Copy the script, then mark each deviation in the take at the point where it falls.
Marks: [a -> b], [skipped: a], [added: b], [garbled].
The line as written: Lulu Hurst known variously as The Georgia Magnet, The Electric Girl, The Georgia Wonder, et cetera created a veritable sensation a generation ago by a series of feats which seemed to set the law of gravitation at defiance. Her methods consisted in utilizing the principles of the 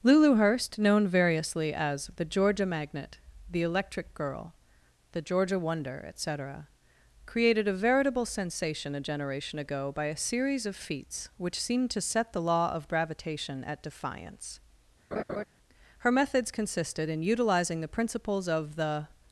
Lulu Hurst known variously as The Georgia Magnet, The Electric Girl, The Georgia Wonder, et cetera created a veritable sensation a generation ago by a series of feats which seemed to set the law of gravitation at defiance. Her methods consisted in utilizing the principles of the